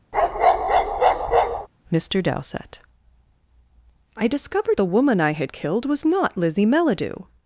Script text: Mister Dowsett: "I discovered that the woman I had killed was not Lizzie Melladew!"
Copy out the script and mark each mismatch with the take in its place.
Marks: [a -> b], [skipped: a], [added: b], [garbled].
Mister Dowsett: "I discovered [skipped: that] the woman I had killed was not Lizzie Melladew!"